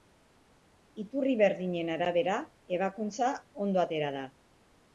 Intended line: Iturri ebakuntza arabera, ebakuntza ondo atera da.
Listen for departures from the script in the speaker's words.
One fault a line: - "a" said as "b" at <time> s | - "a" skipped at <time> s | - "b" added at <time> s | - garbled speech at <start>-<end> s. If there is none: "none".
- "ebakuntza" said as "berdinen" at 1.4 s